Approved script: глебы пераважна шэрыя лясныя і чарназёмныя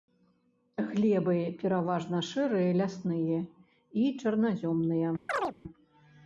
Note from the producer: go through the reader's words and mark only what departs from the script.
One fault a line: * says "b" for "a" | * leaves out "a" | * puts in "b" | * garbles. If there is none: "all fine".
all fine